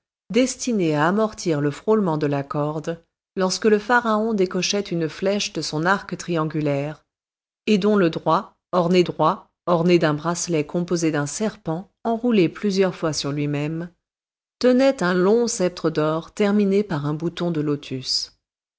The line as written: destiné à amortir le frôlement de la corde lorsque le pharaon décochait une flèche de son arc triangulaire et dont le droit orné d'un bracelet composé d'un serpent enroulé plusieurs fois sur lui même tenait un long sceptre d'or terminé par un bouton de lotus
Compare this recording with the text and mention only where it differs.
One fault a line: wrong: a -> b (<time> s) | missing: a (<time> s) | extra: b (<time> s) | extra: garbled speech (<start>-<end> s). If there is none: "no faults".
extra: droit orné (9.0 s)